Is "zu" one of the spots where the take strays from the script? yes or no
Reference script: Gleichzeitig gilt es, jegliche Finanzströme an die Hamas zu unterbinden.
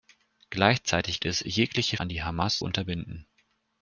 yes